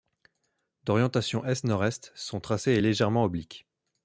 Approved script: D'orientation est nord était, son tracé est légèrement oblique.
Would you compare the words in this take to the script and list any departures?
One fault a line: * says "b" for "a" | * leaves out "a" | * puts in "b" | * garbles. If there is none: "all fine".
* says "est" for "était"